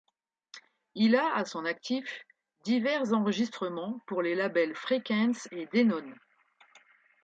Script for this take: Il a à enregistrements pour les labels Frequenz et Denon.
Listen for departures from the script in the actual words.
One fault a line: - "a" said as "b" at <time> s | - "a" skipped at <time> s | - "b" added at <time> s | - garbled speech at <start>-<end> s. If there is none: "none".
- "son actif divers" added at 1.4 s